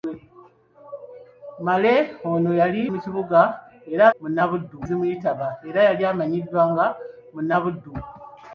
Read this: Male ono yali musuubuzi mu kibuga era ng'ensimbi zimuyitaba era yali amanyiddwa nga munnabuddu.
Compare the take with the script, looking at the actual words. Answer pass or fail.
fail